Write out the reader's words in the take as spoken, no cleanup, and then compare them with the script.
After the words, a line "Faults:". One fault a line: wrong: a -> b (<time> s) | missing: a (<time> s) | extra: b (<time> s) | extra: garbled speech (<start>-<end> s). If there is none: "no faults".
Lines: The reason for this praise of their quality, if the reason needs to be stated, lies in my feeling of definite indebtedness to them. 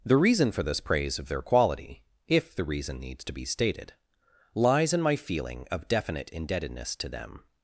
The reason for this praise of their quality, if the reason needs to be stated, lies in my feeling of definite indebtedness to them.
Faults:
no faults